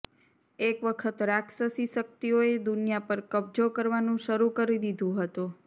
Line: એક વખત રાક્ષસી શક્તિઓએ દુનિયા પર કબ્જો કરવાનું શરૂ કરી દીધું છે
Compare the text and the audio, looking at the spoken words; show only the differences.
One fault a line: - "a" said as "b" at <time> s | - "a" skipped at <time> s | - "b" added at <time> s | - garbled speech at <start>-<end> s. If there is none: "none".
- "છે" said as "હતું" at 5.2 s